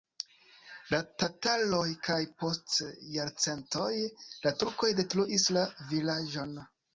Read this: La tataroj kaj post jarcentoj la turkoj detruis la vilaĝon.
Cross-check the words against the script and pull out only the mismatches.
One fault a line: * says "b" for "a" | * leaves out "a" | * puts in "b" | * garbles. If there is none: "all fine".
all fine